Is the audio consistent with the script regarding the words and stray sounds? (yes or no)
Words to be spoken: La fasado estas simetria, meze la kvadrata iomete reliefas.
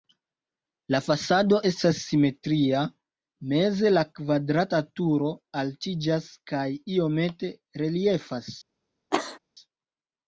no